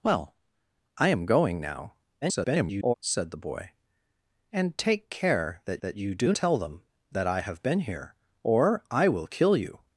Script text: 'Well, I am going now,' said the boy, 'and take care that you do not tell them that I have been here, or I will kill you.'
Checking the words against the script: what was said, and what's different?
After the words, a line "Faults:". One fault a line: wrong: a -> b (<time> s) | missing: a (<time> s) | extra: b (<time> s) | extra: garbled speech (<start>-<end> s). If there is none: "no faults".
'Well, I am going now,' [garbled] said the boy, 'and take care that that you do tell them that I have been here, or I will kill you.'
Faults:
extra: garbled speech (2.2-2.9 s)
extra: that (5.8 s)
missing: not (6.3 s)